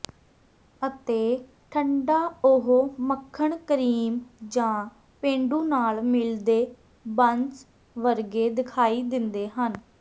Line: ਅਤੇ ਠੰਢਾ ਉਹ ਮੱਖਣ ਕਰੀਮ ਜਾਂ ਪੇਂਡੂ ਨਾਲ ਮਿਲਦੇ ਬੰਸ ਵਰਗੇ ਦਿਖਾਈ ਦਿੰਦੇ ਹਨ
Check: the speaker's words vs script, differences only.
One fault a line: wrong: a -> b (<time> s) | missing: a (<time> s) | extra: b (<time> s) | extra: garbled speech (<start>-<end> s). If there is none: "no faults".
no faults